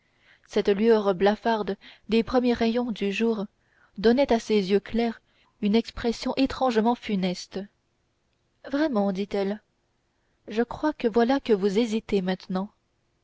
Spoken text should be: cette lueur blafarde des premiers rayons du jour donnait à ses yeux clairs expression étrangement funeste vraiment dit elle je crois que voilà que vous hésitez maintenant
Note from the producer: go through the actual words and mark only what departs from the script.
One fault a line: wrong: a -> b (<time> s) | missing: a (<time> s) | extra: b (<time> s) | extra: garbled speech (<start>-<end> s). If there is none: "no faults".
extra: une (5.6 s)